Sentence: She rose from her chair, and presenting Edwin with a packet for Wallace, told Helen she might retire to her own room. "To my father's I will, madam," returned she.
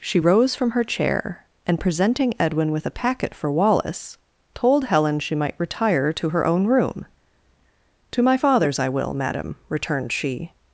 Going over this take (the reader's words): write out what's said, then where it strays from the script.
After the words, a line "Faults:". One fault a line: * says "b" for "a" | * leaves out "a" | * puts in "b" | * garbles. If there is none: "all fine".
She rose from her chair, and presenting Edwin with a packet for Wallace, told Helen she might retire to her own room. "To my father's I will, madam," returned she.
Faults:
all fine